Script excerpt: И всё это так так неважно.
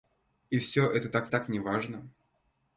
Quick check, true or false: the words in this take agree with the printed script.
true